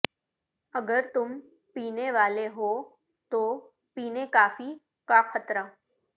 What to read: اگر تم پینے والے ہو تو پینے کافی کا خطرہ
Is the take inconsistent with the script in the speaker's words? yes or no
no